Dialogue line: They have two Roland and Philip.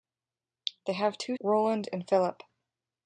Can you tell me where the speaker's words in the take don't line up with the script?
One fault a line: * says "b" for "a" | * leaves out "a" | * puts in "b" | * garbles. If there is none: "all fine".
all fine